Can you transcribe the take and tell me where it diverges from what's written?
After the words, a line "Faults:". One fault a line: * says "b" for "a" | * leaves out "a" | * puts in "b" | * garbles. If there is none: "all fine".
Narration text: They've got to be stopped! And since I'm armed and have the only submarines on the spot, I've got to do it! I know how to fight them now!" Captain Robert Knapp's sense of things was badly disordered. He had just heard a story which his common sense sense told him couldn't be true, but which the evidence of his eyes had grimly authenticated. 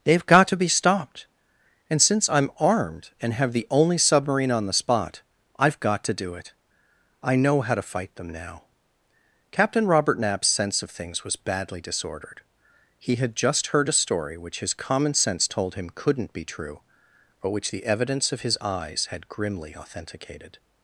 They've got to be stopped! And since I'm armed and have the only submarine on the spot, I've got to do it! I know how to fight them now!" Captain Robert Knapp's sense of things was badly disordered. He had just heard a story which his common sense told him couldn't be true, but which the evidence of his eyes had grimly authenticated.
Faults:
* says "submarine" for "submarines"
* leaves out "sense"